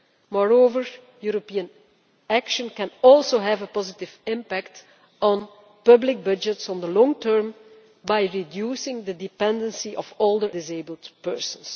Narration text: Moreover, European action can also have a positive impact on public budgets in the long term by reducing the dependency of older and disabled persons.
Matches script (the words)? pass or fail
fail